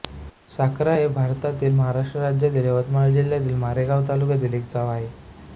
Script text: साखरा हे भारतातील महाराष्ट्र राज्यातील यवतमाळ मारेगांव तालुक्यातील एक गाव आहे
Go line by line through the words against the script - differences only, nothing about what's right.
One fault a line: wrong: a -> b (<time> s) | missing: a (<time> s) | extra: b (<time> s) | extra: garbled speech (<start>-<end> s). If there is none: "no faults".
extra: जिल्ह्यातील (3.1 s)